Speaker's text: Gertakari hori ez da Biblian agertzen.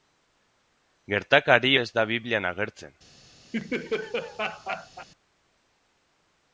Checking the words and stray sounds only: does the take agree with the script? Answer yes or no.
no